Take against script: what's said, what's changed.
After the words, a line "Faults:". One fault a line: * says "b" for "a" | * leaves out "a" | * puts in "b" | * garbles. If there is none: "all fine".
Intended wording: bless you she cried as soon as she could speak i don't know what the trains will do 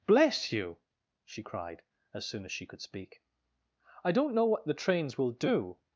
bless you she cried as soon as she could speak i don't know what the trains will do
Faults:
all fine